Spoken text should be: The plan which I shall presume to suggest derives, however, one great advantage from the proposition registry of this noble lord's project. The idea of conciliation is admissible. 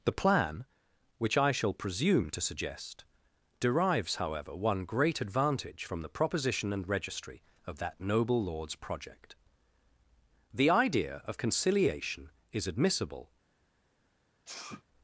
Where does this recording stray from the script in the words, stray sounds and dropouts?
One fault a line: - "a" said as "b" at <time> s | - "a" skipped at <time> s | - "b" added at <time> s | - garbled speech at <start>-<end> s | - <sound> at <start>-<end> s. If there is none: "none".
- "and" added at 6.7 s
- "this" said as "that" at 7.8 s
- sneeze at 14.4-14.8 s